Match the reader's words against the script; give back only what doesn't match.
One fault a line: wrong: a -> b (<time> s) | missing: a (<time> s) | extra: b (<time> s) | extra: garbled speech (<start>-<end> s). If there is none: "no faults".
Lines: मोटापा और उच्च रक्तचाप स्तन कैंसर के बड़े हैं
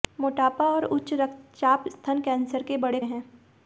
no faults